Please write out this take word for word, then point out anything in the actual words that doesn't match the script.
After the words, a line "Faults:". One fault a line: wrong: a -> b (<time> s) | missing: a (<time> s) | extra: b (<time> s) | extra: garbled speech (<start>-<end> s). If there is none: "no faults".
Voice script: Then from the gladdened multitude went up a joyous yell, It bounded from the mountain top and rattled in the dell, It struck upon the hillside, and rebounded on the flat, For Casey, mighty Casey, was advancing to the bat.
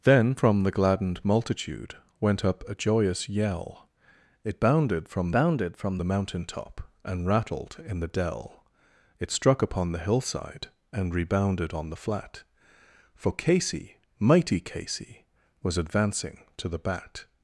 Then from the gladdened multitude went up a joyous yell, It bounded from bounded from the mountain top and rattled in the dell, It struck upon the hillside, and rebounded on the flat, For Casey, mighty Casey, was advancing to the bat.
Faults:
extra: bounded from (5.3 s)